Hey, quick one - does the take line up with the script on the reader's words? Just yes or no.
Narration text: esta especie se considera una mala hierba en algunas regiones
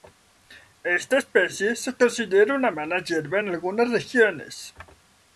yes